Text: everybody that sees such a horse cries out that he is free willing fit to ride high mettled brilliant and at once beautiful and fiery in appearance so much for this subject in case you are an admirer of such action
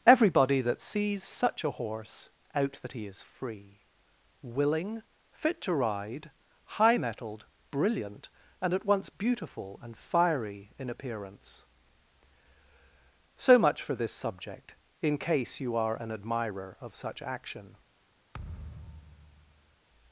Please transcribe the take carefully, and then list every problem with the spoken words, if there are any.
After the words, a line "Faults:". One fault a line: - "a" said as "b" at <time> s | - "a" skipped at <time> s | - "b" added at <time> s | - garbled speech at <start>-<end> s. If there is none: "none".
everybody that sees such a horse out that he is free willing fit to ride high mettled brilliant and at once beautiful and fiery in appearance so much for this subject in case you are an admirer of such action
Faults:
- "cries" skipped at 2.3 s